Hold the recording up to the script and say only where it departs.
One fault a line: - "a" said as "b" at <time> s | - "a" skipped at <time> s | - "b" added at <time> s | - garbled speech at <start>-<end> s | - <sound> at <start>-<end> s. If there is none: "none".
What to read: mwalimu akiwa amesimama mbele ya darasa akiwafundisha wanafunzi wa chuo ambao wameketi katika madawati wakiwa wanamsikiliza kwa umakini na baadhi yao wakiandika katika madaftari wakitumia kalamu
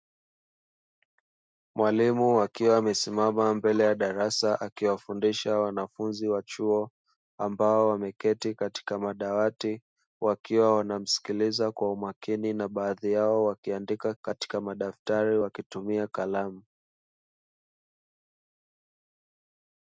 none